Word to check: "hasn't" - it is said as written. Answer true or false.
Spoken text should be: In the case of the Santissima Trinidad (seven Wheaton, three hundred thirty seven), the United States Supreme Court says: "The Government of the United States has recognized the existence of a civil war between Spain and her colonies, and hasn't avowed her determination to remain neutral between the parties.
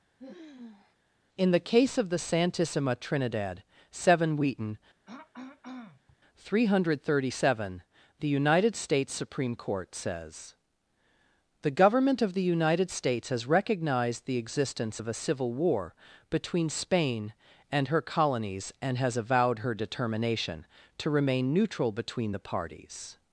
false